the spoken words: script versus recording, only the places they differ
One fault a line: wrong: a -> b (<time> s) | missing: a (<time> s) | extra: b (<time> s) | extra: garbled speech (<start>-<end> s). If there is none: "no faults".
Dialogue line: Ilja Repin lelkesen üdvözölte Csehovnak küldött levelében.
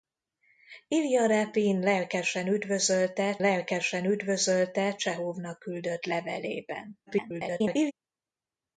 extra: lelkesen üdvözölte (3.4 s)
extra: garbled speech (7.1-7.9 s)